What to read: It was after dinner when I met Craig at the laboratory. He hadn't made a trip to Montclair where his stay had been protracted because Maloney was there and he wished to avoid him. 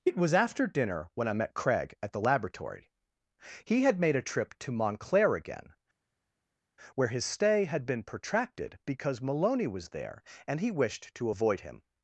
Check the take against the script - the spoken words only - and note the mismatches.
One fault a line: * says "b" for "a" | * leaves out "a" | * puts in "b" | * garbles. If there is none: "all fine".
* says "had" for "hadn't"
* puts in "again"